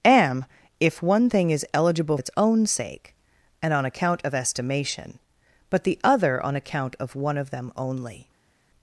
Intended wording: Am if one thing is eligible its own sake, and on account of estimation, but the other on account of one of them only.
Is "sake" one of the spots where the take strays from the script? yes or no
no